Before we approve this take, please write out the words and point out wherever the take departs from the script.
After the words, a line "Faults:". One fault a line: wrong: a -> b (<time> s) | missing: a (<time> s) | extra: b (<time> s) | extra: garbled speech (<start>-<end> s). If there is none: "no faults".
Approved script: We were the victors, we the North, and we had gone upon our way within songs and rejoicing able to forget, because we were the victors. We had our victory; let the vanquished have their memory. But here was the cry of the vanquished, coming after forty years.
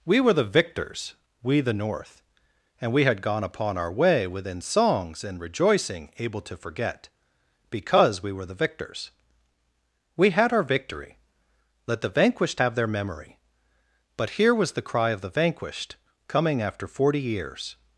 We were the victors, we the North, and we had gone upon our way within songs and rejoicing able to forget, because we were the victors. We had our victory; let the vanquished have their memory. But here was the cry of the vanquished, coming after forty years.
Faults:
no faults